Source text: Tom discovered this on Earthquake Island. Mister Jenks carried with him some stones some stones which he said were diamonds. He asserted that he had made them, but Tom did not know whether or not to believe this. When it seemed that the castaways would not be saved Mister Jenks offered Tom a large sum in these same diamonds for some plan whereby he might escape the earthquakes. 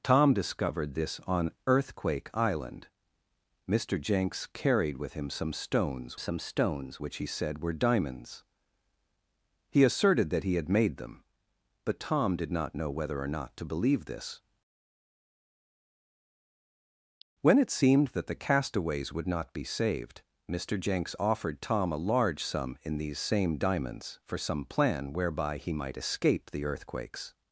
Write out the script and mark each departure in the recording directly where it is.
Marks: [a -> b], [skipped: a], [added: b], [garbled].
Tom discovered this on Earthquake Island. Mister Jenks carried with him some stones some stones which he said were diamonds. He asserted that he had made them, but Tom did not know whether or not to believe this. When it seemed that the castaways would not be saved Mister Jenks offered Tom a large sum in these same diamonds for some plan whereby he might escape the earthquakes.